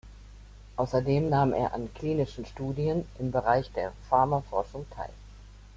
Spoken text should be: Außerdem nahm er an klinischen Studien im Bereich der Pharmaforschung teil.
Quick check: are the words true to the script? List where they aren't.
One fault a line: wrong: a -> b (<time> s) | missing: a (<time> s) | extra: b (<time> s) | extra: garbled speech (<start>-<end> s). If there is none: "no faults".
no faults